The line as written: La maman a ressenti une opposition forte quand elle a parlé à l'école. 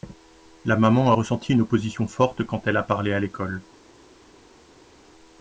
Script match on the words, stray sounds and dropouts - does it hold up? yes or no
yes